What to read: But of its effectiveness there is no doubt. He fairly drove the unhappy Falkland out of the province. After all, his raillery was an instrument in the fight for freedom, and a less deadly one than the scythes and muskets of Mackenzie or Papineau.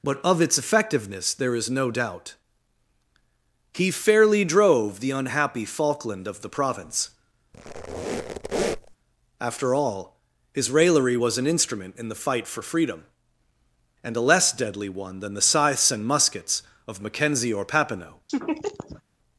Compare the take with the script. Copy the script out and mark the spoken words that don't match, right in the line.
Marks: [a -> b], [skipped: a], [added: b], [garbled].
But of its effectiveness there is no doubt. He fairly drove the unhappy Falkland [skipped: out] of the province. After all, his raillery was an instrument in the fight for freedom, and a less deadly one than the scythes and muskets of Mackenzie or Papineau.